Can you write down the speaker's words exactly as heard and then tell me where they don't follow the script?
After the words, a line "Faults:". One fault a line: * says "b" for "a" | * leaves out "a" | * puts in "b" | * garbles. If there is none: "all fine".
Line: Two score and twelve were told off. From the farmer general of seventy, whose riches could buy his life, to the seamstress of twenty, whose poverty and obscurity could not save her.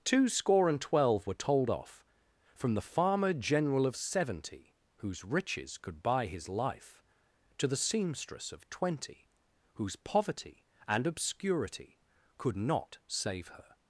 Two score and twelve were told off. From the farmer general of seventy, whose riches could buy his life, to the seamstress of twenty, whose poverty and obscurity could not save her.
Faults:
all fine